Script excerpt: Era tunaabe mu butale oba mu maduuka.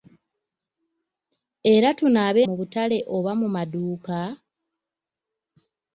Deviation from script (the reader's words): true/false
false